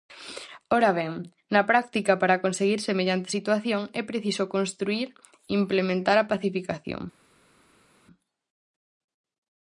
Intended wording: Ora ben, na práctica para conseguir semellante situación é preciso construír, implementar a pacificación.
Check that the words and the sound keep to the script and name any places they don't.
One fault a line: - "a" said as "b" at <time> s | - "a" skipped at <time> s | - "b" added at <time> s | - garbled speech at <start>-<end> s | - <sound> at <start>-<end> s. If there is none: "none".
none